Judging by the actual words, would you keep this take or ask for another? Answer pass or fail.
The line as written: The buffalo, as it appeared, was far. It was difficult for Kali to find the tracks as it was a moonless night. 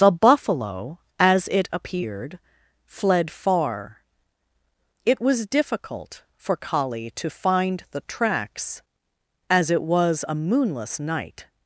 fail